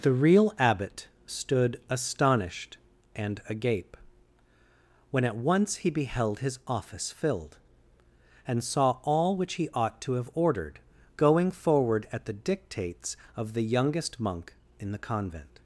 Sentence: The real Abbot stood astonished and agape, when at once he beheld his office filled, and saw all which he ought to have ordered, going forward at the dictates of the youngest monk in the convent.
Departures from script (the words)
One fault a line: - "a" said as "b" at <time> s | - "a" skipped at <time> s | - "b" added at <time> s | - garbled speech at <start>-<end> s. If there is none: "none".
none